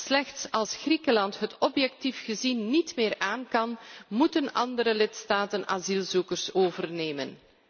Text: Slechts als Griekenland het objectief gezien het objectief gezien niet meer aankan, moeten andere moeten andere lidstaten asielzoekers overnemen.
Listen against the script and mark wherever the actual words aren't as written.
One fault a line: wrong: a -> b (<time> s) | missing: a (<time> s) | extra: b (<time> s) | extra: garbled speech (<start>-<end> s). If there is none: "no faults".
missing: het objectief gezien (2.7 s)
missing: moeten andere (4.9 s)